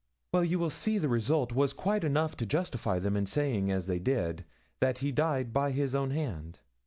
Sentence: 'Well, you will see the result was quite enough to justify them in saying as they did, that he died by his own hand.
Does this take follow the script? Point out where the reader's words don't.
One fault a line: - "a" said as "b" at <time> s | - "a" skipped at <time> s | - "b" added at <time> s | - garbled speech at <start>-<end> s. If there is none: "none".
none